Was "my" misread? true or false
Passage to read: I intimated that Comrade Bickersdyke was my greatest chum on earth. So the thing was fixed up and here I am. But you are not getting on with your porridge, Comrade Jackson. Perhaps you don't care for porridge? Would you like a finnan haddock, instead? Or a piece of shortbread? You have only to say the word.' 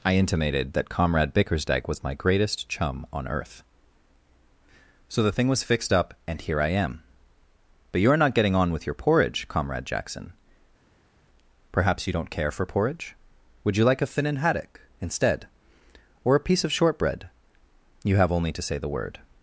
false